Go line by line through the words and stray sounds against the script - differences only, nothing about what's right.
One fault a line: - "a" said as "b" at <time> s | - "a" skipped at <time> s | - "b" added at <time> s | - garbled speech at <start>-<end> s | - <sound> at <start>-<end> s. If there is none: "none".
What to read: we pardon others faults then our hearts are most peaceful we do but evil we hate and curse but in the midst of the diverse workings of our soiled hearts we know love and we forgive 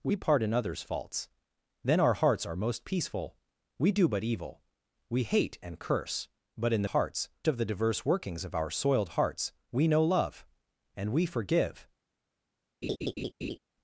- "midst" said as "hearts" at 6.9 s
- laugh at 12.8-13.6 s